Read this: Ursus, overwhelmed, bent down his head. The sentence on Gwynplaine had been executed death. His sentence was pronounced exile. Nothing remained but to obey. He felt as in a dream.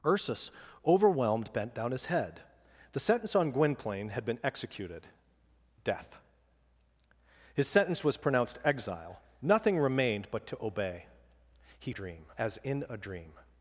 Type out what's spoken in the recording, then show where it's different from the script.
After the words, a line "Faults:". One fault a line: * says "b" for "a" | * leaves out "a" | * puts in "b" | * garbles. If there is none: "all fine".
Ursus, overwhelmed, bent down his head. The sentence on Gwynplaine had been executed death. His sentence was pronounced exile. Nothing remained but to obey. He dream as in a dream.
Faults:
* says "dream" for "felt"